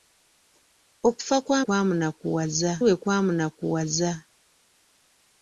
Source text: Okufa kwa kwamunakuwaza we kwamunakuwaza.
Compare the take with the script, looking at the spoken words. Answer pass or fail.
pass